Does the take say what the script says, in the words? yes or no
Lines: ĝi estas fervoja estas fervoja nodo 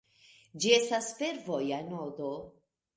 no